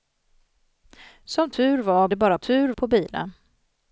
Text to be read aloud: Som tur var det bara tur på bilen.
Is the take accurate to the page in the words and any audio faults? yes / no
yes